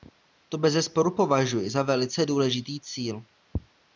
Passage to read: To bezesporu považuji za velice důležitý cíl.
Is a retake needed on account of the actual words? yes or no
no